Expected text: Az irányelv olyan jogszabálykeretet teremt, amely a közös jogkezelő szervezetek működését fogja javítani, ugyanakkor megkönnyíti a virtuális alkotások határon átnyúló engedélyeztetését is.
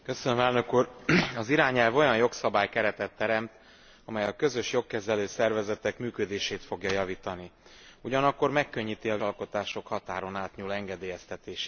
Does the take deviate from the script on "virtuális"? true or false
true